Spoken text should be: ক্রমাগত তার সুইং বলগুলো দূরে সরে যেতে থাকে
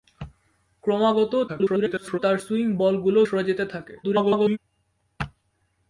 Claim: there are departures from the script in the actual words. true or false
true